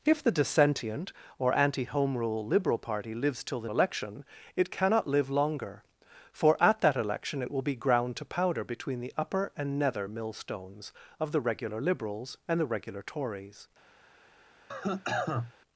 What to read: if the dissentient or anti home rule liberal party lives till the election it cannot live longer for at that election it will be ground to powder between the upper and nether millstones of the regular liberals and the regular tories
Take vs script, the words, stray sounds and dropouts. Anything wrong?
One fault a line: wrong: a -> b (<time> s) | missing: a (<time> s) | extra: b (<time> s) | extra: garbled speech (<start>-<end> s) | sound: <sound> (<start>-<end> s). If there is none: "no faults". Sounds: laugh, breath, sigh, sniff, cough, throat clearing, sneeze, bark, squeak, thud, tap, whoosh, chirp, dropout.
sound: cough (14.7-15.5 s)